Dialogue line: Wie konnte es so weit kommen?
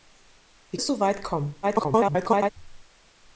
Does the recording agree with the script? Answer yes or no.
no